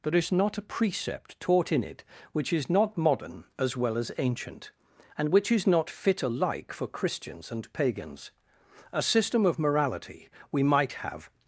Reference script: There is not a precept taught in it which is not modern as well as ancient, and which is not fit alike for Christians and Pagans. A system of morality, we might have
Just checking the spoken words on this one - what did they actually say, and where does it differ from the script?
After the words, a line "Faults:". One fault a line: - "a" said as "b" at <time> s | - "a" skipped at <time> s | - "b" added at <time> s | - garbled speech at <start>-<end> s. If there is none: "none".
There is not a precept taught in it which is not modern as well as ancient, and which is not fit alike for Christians and Pagans. A system of morality, we might have
Faults:
none